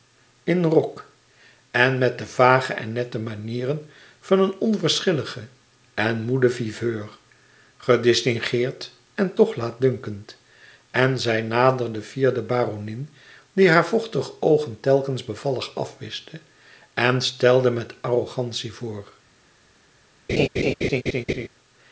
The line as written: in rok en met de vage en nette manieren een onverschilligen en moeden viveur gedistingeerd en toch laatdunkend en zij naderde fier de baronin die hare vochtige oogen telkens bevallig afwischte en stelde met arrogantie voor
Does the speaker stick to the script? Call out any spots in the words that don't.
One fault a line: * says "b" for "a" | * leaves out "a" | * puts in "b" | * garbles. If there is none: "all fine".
* puts in "van"